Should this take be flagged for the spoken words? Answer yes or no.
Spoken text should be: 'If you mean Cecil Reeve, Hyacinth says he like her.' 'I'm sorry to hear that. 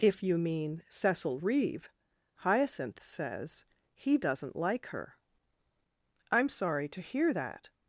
yes